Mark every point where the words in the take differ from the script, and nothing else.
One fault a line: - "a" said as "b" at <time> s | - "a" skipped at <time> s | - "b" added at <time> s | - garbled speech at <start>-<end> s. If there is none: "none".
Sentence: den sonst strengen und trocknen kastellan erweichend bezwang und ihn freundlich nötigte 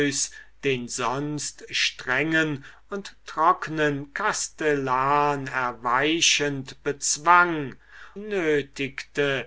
- "und ihn freundlich" skipped at 7.7 s